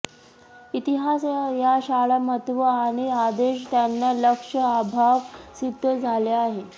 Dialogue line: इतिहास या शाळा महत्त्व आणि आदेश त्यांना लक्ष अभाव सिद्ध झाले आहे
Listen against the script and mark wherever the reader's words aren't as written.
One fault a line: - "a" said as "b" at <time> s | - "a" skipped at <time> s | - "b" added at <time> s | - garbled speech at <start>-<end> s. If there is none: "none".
none